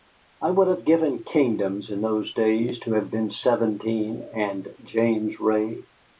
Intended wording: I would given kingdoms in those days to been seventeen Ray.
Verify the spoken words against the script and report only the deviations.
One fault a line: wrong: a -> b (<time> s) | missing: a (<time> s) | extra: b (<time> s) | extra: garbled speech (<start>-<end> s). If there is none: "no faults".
extra: have (0.7 s)
extra: have (2.9 s)
extra: and James (4.3 s)